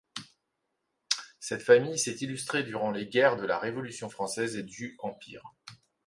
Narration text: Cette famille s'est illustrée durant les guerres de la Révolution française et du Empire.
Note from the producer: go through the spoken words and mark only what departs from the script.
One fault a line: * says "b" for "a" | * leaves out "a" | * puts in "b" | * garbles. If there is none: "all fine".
all fine